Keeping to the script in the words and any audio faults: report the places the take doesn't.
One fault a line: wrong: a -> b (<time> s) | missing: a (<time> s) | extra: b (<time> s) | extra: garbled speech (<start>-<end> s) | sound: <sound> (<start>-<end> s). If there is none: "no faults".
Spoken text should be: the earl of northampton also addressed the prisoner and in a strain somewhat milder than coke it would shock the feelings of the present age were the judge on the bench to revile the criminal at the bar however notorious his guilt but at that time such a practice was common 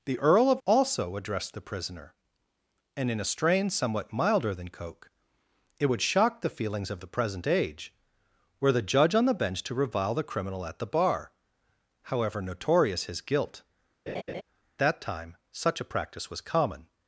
missing: northampton (0.6 s)
missing: but at (13.6 s)
sound: laugh (14.1-14.4 s)